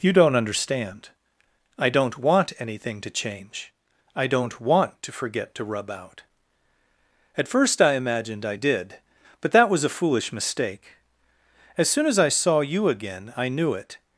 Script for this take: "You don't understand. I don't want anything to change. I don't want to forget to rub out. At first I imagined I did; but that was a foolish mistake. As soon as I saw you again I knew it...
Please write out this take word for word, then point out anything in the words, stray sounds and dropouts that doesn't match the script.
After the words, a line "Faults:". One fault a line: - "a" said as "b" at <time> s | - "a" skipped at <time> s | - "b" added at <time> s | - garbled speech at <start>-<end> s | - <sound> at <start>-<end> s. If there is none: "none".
"You don't understand. I don't want anything to change. I don't want to forget to rub out. At first I imagined I did; but that was a foolish mistake. As soon as I saw you again I knew it...
Faults:
none